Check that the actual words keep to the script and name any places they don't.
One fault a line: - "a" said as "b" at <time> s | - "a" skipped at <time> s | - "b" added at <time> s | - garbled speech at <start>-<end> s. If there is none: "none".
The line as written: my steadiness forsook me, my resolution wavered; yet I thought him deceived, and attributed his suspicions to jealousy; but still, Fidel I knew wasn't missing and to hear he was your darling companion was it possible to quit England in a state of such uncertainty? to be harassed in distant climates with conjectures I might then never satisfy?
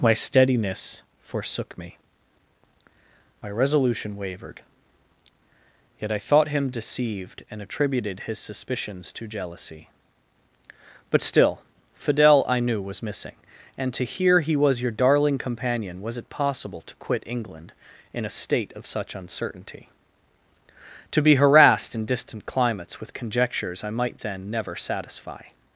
- "wasn't" said as "was" at 12.8 s